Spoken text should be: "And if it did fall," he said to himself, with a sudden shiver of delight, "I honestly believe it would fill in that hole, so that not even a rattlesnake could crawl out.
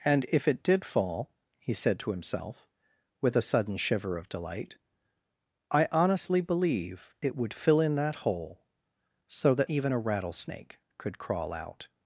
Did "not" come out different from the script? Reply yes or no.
yes